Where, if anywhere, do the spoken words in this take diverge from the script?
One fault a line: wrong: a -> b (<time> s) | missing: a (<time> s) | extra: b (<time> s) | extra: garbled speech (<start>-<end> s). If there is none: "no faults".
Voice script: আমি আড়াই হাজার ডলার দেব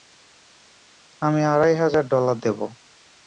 no faults